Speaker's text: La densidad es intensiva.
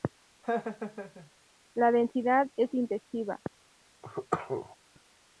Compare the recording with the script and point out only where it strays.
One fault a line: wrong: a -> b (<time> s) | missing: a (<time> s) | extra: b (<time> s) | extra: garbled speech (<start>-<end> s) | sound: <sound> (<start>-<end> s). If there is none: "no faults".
sound: laugh (0.4-1.3 s)
sound: cough (4.0-4.8 s)